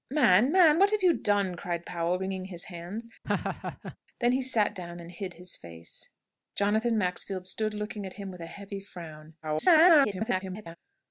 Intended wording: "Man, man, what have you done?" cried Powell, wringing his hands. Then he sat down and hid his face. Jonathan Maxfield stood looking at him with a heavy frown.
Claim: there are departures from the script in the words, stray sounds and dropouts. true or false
true